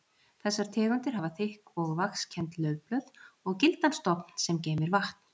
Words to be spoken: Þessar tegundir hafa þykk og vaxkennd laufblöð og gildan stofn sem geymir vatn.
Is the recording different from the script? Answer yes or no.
no